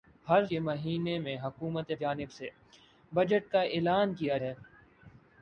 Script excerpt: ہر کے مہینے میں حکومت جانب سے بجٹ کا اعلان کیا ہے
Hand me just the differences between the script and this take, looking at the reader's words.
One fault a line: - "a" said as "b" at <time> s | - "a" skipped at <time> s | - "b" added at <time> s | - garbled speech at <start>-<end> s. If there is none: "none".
none